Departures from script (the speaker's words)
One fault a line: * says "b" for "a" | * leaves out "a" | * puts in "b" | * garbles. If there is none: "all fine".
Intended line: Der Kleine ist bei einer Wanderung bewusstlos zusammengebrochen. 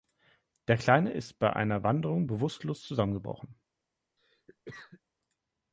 all fine